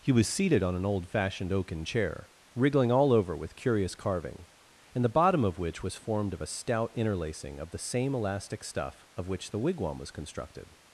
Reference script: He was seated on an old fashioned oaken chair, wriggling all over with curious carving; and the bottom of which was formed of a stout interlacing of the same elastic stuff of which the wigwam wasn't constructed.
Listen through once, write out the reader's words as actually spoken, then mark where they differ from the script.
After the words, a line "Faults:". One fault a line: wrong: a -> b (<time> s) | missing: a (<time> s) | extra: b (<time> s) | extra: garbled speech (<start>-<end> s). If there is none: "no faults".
He was seated on an old fashioned oaken chair, wriggling all over with curious carving; and the bottom of which was formed of a stout interlacing of the same elastic stuff of which the wigwam was constructed.
Faults:
wrong: wasn't -> was (10.0 s)